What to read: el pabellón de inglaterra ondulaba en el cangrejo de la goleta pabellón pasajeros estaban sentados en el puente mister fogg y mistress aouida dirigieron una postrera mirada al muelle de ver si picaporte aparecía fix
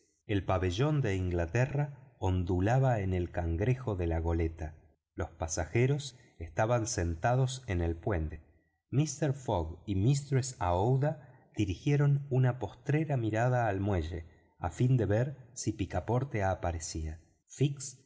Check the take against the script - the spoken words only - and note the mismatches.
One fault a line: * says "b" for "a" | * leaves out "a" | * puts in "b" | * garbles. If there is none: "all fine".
* says "los" for "pabellón"
* puts in "a fin"